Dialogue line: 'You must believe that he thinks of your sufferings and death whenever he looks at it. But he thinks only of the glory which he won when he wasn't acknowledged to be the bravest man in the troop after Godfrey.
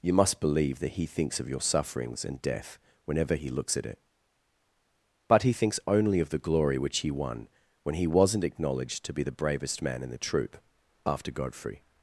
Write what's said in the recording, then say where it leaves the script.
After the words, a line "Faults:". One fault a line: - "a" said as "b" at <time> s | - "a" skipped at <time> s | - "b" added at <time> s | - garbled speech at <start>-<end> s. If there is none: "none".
'You must believe that he thinks of your sufferings and death whenever he looks at it. But he thinks only of the glory which he won when he wasn't acknowledged to be the bravest man in the troop after Godfrey.
Faults:
none